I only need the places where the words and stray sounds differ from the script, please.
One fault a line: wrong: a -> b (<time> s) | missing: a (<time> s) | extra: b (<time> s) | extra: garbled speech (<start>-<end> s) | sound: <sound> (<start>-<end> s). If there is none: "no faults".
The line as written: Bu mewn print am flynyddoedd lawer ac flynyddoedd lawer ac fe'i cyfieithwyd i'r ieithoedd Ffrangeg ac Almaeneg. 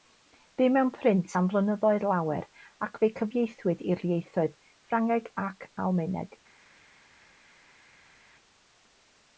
missing: flynyddoedd lawer ac (3.0 s)